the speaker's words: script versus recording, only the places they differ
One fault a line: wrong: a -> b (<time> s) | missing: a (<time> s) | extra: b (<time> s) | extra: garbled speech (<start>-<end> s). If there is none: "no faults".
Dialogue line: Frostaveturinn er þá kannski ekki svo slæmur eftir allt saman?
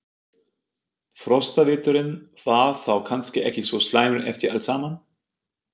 wrong: er -> var (2.5 s)